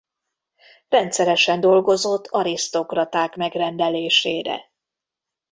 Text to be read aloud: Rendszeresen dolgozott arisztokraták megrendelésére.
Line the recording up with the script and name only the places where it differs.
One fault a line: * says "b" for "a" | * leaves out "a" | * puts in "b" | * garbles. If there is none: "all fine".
all fine